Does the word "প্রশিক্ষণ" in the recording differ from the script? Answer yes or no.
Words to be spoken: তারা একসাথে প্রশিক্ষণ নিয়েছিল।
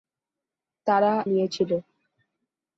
yes